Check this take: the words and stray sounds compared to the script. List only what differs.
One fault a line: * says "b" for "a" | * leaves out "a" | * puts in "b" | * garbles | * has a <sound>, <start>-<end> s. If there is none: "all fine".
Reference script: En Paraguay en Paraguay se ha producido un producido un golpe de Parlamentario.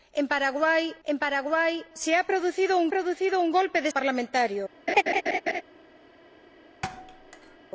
* has a laugh, 4.9-5.6 s
* has a thud, 6.8-7.6 s